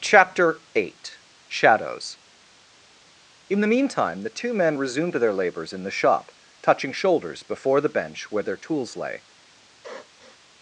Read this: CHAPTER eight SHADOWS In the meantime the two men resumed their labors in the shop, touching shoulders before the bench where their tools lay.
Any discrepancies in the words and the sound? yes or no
yes